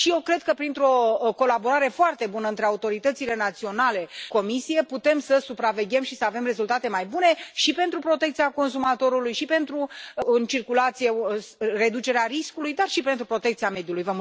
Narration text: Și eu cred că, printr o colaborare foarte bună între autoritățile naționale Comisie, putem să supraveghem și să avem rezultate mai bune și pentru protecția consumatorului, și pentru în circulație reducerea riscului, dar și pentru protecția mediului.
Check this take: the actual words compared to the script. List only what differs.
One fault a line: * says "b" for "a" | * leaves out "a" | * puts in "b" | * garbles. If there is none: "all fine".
all fine